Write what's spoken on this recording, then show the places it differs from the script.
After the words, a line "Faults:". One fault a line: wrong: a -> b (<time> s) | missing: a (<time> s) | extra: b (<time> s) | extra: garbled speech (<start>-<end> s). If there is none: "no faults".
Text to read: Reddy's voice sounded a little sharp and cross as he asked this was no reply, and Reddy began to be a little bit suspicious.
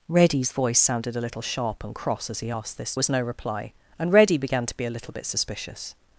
Reddy's voice sounded a little sharp and cross as he asked this was no reply, and Reddy began to be a little bit suspicious.
Faults:
no faults